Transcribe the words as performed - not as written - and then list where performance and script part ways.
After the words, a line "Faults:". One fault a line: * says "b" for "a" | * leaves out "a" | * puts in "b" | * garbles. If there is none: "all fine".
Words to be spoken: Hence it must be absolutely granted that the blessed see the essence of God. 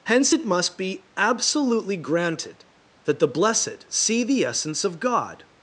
Hence it must be absolutely granted that the blessed see the essence of God.
Faults:
all fine